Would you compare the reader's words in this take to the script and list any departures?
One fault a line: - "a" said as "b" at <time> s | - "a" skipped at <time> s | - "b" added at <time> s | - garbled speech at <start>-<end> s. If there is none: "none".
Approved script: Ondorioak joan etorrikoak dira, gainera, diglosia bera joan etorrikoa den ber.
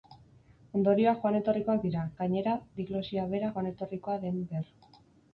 none